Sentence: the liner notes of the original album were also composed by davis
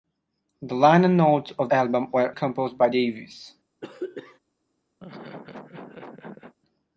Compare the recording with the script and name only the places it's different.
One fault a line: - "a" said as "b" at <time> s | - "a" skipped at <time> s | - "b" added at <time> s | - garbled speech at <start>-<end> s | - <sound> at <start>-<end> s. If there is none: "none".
- "the original" skipped at 1.7 s
- "also" skipped at 2.3 s
- throat clearing at 3.8-4.4 s
- laugh at 5.0-6.5 s